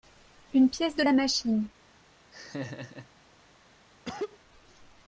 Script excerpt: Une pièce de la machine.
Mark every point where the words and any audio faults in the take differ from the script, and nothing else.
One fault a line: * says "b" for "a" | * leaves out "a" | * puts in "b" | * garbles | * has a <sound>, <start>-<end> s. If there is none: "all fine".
* has a laugh, 2.3-3.1 s
* has a cough, 4.1-4.4 s